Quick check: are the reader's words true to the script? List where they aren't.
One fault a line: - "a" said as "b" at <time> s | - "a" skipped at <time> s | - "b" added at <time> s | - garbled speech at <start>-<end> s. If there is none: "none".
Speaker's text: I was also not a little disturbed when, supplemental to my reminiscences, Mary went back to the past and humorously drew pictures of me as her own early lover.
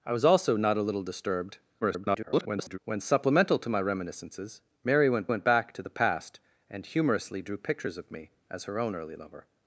- garbled speech at 1.8-2.8 s
- "went" added at 5.3 s